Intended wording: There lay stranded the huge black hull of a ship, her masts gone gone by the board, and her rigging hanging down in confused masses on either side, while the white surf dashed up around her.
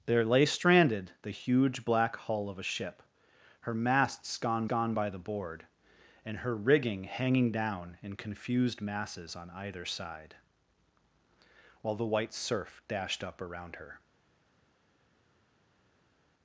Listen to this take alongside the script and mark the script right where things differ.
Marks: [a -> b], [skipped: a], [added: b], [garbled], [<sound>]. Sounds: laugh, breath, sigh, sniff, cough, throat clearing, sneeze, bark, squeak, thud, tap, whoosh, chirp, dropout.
There lay stranded the huge black hull of a ship, her masts gone gone by the board, and her rigging hanging down in confused masses on either side, while the white surf dashed up around her.